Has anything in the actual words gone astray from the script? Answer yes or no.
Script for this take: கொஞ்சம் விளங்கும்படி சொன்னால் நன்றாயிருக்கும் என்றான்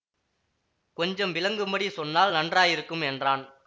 no